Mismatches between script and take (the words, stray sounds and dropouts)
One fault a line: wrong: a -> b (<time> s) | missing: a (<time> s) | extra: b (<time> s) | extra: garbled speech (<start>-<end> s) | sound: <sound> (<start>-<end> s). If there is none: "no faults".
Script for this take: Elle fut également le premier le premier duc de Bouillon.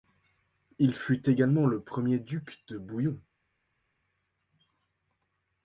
wrong: Elle -> Il (0.8 s)
missing: le premier (2.2 s)